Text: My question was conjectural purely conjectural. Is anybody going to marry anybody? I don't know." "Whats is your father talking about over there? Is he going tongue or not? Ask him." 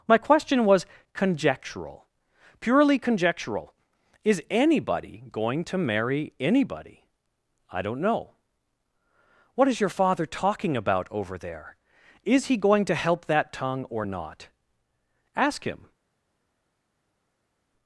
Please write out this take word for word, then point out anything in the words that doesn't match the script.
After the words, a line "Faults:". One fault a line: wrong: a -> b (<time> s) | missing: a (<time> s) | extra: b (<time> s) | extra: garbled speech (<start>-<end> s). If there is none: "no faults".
My question was conjectural purely conjectural. Is anybody going to marry anybody? I don't know." "What is your father talking about over there? Is he going to help that tongue or not? Ask him."
Faults:
wrong: Whats -> What (9.6 s)
extra: to help that (12.8 s)